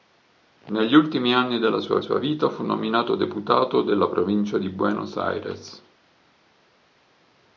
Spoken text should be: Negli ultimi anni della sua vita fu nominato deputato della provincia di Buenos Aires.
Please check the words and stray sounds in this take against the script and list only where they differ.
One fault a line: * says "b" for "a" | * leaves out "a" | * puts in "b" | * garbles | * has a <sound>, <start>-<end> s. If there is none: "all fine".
* puts in "sua"